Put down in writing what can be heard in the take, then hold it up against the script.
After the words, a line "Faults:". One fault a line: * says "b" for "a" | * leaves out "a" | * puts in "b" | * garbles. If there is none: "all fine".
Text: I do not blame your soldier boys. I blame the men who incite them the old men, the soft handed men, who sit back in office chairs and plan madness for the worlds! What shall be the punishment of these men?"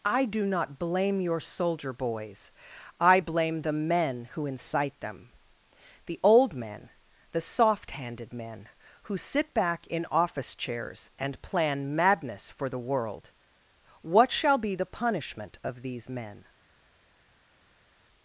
I do not blame your soldier boys. I blame the men who incite them the old men, the soft handed men, who sit back in office chairs and plan madness for the world! What shall be the punishment of these men?"
Faults:
* says "world" for "worlds"